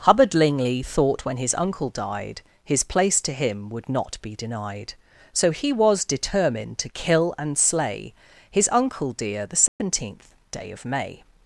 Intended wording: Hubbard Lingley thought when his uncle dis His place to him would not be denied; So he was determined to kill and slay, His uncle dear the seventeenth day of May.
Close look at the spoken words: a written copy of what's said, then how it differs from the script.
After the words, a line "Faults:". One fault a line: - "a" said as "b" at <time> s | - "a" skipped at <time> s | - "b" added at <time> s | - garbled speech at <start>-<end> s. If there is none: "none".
Hubbard Lingley thought when his uncle died His place to him would not be denied; So he was determined to kill and slay, His uncle dear the seventeenth day of May.
Faults:
- "dis" said as "died" at 1.9 s